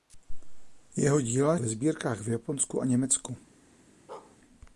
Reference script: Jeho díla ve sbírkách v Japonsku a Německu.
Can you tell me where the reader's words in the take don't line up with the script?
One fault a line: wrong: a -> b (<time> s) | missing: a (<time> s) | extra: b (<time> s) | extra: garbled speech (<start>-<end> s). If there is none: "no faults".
no faults